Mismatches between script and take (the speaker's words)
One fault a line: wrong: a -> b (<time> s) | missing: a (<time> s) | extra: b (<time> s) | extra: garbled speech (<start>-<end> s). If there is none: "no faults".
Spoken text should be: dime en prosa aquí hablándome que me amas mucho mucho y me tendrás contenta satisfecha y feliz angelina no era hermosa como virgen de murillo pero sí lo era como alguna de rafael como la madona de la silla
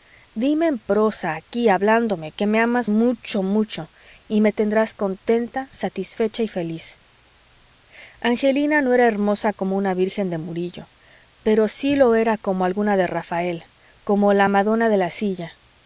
extra: una (9.8 s)